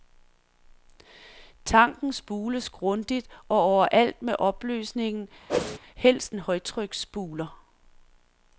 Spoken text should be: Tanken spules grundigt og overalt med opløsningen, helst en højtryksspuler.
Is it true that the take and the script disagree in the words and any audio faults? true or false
true